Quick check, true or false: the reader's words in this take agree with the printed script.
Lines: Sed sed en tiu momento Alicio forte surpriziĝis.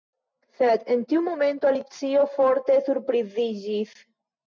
false